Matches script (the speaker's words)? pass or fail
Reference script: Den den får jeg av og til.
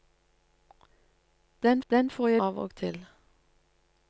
pass